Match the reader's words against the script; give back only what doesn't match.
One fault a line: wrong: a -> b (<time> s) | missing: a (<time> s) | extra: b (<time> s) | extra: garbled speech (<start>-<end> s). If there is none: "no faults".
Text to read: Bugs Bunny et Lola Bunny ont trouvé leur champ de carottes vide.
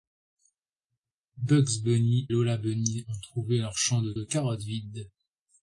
missing: et (2.3 s)
extra: de (4.1 s)